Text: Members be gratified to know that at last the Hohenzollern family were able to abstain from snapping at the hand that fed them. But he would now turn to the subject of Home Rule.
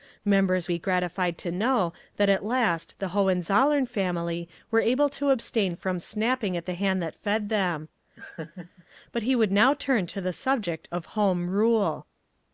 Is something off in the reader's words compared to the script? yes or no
no